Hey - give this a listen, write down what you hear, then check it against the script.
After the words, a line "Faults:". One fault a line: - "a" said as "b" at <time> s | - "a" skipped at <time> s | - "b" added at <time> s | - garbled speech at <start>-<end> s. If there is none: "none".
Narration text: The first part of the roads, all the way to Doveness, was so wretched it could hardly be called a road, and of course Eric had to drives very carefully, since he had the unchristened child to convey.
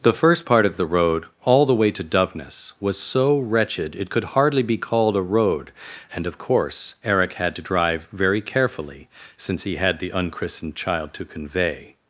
The first part of the road, all the way to Doveness, was so wretched it could hardly be called a road, and of course Eric had to drive very carefully, since he had the unchristened child to convey.
Faults:
- "roads" said as "road" at 0.9 s
- "drives" said as "drive" at 7.6 s